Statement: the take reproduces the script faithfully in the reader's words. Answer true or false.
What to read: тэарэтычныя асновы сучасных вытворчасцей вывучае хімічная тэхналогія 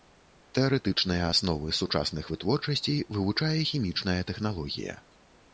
true